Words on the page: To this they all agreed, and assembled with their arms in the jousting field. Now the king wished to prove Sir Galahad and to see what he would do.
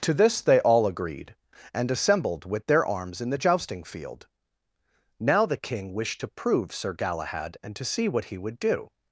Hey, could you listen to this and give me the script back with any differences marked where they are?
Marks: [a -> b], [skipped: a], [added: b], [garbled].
To this they all agreed, and assembled with their arms in the jousting field. Now the king wished to prove Sir Galahad and to see what he would do.